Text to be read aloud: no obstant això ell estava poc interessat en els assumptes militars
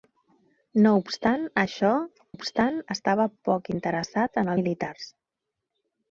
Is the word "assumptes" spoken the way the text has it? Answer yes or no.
no